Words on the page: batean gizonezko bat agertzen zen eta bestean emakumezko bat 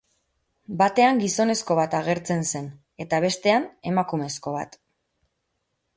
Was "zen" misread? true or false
false